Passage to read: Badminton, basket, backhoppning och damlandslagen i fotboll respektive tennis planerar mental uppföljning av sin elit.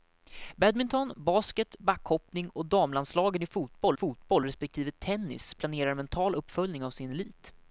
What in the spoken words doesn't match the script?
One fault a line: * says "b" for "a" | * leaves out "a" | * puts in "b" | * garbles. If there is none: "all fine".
* puts in "fotboll"